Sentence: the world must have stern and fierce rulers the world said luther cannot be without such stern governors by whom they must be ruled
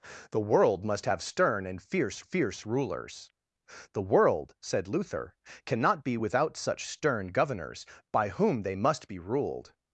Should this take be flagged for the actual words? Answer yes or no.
yes